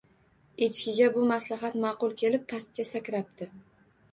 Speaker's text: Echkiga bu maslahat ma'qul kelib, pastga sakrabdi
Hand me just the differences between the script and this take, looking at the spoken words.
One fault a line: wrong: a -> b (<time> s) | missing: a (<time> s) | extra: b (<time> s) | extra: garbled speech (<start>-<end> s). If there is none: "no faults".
no faults